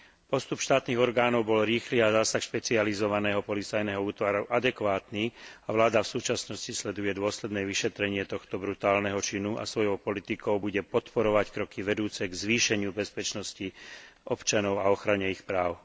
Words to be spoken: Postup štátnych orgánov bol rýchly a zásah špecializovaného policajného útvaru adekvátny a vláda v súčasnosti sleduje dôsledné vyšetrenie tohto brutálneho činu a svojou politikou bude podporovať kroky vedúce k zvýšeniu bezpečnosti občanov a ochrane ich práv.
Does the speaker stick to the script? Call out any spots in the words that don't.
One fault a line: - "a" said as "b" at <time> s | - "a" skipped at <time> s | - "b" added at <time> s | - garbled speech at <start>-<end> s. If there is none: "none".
none